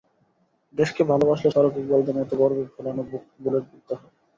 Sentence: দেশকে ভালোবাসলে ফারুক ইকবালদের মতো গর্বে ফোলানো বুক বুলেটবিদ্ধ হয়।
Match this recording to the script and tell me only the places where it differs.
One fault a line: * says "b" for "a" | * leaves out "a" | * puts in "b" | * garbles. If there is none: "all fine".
all fine